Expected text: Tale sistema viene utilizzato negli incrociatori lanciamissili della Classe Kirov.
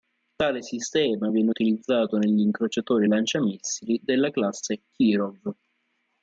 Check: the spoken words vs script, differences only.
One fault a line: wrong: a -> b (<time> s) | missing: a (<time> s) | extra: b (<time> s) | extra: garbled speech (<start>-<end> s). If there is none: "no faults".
no faults